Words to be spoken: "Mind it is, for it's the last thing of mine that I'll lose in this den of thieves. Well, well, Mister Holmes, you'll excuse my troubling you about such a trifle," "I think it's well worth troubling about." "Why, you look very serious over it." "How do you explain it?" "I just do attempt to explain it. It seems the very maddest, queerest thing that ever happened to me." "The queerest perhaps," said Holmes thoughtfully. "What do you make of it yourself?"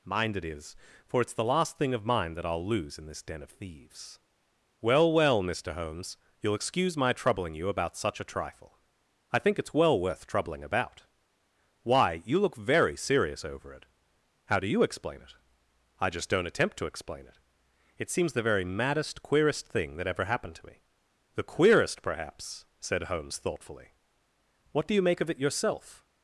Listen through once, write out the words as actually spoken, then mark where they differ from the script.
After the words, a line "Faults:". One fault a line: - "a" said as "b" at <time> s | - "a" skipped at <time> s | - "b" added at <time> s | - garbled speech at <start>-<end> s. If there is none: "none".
"Mind it is, for it's the last thing of mine that I'll lose in this den of thieves. Well, well, Mister Holmes, you'll excuse my troubling you about such a trifle," "I think it's well worth troubling about." "Why, you look very serious over it." "How do you explain it?" "I just don't attempt to explain it. It seems the very maddest, queerest thing that ever happened to me." "The queerest perhaps," said Holmes thoughtfully. "What do you make of it yourself?"
Faults:
- "do" said as "don't" at 16.3 s